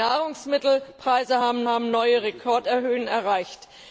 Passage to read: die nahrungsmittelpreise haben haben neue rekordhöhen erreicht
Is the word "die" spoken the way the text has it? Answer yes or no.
yes